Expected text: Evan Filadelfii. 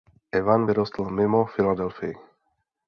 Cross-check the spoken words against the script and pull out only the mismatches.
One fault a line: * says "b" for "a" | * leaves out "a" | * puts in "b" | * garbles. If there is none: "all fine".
* puts in "vyrostl mimo"